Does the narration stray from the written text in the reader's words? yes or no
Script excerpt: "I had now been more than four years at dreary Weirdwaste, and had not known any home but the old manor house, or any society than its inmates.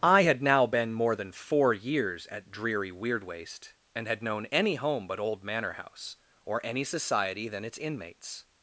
yes